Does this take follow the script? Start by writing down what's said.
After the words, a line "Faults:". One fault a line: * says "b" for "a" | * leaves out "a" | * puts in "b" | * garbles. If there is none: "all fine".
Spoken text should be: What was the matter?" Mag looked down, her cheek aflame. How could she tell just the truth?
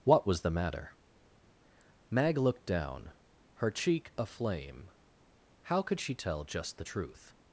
What was the matter?" Mag looked down, her cheek aflame. How could she tell just the truth?
Faults:
all fine